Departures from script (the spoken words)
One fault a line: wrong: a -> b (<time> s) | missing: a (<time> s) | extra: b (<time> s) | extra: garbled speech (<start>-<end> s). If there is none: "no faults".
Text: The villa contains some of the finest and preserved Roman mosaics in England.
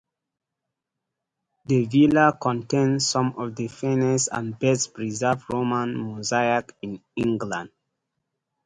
extra: best (4.6 s)